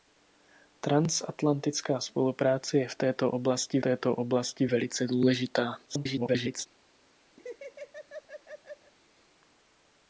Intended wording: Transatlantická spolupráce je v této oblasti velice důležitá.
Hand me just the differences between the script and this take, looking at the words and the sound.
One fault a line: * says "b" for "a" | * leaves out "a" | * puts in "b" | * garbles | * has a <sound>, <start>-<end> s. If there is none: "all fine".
* puts in "této oblasti"
* garbles
* has a laugh, 7.4-8.9 s